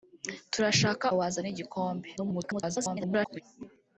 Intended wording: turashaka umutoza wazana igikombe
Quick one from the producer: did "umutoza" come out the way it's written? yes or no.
no